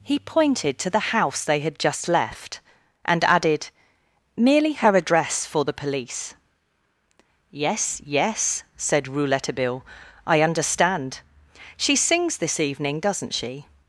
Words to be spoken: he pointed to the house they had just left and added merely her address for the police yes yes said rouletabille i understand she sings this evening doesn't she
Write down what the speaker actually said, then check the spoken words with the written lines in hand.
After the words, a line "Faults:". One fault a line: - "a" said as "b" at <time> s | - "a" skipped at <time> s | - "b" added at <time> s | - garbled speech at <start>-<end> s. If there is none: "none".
he pointed to the house they had just left and added merely her address for the police yes yes said rouletabille i understand she sings this evening doesn't she
Faults:
none